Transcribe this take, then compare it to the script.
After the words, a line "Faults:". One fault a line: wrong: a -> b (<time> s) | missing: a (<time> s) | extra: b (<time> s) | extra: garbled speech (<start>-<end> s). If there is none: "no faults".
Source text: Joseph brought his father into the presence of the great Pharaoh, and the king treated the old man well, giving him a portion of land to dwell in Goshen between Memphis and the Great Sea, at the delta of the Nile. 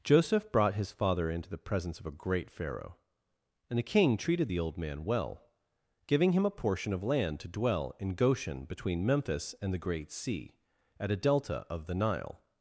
Joseph brought his father into the presence of a great Pharaoh, and the king treated the old man well, giving him a portion of land to dwell in Goshen between Memphis and the Great Sea, at a delta of the Nile.
Faults:
wrong: the -> a (2.0 s)
wrong: the -> a (11.1 s)